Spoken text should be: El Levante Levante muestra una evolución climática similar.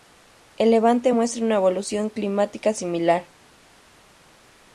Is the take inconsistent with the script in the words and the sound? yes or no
yes